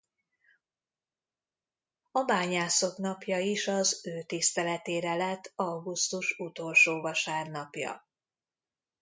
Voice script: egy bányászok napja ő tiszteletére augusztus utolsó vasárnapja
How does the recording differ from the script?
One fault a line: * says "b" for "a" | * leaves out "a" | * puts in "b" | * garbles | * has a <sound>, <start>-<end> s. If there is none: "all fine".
* says "a" for "egy"
* puts in "is az"
* puts in "lett"